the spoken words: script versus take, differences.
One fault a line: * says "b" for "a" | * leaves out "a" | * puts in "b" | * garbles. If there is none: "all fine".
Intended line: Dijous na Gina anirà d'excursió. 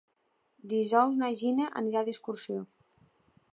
all fine